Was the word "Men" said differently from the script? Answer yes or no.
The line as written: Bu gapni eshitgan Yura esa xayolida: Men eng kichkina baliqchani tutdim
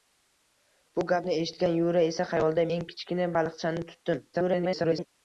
yes